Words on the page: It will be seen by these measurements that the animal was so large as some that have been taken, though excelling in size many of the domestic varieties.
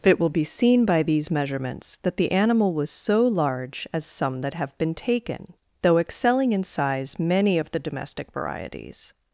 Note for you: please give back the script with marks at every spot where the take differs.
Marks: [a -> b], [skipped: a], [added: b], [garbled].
It will be seen by these measurements that the animal was so large as some that have been taken, though excelling in size many of the domestic varieties.